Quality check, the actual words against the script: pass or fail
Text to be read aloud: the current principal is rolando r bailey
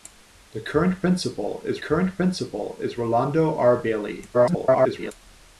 fail